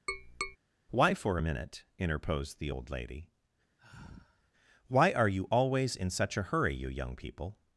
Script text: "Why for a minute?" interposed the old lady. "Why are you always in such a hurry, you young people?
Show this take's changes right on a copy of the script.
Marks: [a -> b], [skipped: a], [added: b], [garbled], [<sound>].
[tap] "Why for a minute?" interposed the old lady. [sigh] "Why are you always in such a hurry, you young people?